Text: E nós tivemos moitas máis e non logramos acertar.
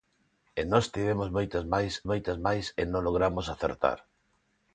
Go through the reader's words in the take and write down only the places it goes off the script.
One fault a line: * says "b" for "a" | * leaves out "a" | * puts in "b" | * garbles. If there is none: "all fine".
* puts in "moitas máis"